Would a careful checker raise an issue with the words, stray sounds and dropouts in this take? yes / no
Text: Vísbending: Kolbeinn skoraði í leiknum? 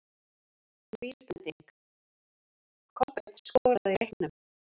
no